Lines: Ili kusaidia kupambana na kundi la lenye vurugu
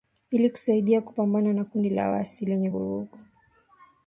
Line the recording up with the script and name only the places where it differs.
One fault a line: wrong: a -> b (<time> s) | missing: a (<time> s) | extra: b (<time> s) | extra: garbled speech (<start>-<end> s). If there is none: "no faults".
extra: waasi (2.1 s)